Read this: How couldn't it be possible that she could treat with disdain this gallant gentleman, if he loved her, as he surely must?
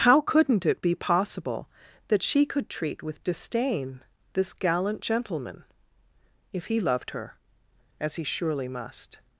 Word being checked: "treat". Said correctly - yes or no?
yes